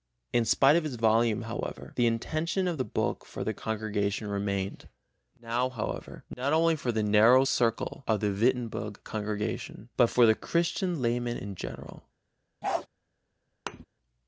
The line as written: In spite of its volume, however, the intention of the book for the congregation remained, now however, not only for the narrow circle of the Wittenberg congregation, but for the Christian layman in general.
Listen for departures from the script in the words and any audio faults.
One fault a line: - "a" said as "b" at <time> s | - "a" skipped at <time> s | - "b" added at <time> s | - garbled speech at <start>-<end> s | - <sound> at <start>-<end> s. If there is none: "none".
- bark at 12.6-12.9 s
- thud at 13.7-13.9 s